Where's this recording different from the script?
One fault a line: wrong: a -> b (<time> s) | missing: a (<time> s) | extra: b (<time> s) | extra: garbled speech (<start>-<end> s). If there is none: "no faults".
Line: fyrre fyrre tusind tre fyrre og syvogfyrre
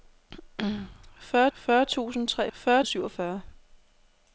no faults